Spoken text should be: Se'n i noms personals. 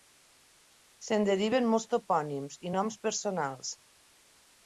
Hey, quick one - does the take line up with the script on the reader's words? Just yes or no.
no